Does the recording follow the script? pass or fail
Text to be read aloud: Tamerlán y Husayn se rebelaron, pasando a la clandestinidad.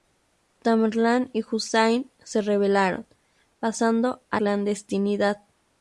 fail